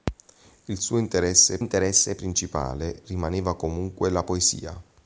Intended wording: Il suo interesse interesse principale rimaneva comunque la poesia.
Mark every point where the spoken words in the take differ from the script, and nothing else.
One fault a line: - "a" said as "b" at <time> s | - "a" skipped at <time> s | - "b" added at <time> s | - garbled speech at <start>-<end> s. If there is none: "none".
none